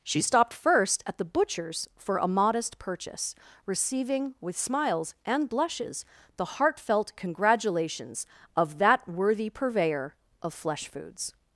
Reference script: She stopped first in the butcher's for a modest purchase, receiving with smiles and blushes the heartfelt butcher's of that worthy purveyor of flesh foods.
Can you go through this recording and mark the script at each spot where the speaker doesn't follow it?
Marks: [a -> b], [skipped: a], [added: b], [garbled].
She stopped first [in -> at] the butcher's for a modest purchase, receiving with smiles and blushes the heartfelt [butcher's -> congratulations] of that worthy purveyor of flesh foods.